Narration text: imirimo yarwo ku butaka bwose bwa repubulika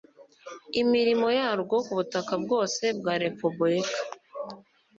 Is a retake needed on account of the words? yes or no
no